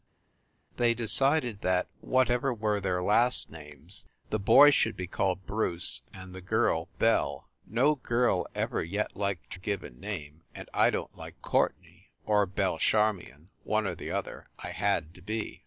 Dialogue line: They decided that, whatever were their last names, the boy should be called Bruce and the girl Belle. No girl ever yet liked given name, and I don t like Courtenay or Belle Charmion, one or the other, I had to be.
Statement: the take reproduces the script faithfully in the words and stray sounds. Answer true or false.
true